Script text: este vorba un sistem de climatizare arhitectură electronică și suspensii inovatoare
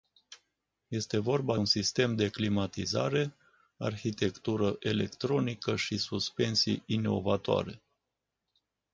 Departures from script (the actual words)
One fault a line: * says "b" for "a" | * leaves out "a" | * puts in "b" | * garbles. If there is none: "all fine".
all fine